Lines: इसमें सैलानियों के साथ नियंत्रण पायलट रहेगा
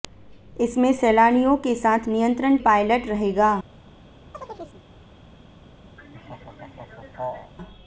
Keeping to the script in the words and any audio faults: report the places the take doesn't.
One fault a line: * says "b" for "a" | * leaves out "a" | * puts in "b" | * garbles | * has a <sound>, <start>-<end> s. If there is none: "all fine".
* has a chirp, 4.3-4.8 s
* has a laugh, 6.0-7.5 s